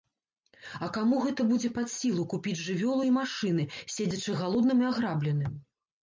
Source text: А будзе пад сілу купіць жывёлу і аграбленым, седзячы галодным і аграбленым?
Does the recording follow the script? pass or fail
fail